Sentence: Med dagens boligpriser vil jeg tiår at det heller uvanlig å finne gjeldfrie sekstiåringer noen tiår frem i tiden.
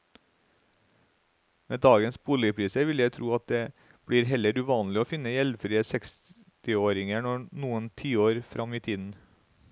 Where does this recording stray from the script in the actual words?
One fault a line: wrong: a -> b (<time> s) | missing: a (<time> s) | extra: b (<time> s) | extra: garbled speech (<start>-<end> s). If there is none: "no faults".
wrong: tiår -> tro (3.1 s)
extra: blir (4.1 s)